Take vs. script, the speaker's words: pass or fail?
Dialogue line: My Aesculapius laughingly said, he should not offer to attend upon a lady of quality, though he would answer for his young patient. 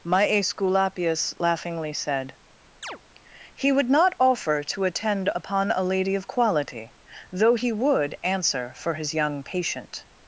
fail